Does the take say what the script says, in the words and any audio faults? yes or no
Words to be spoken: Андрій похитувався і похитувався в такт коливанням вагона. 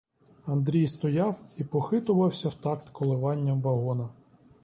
no